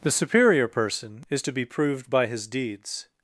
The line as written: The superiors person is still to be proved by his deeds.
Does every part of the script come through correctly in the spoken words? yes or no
no